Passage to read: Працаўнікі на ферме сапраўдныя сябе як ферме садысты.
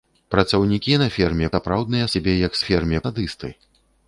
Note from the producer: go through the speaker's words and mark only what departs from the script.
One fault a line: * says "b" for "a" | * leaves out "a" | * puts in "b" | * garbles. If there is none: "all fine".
all fine